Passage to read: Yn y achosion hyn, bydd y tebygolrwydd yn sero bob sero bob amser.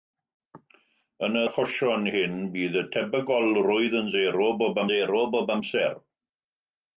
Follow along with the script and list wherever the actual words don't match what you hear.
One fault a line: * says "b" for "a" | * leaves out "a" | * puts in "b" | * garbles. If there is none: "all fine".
all fine